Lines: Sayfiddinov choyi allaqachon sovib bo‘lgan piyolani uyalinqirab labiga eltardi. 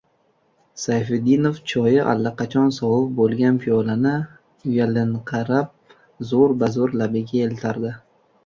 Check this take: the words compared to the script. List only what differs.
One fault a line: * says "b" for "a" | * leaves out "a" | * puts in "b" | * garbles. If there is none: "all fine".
* puts in "zo‘r bazo‘r"